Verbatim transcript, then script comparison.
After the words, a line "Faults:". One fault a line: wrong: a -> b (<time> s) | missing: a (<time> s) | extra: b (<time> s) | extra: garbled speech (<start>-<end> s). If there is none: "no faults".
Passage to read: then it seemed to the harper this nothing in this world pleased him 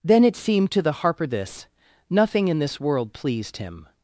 then it seemed to the harper this nothing in this world pleased him
Faults:
no faults